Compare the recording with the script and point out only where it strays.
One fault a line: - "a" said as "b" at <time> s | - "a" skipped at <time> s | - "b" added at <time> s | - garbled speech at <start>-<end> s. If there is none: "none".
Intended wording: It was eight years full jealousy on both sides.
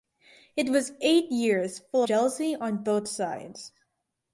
none